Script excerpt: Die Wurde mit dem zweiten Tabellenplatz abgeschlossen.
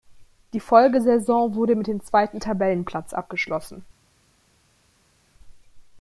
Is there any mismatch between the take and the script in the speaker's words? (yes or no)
yes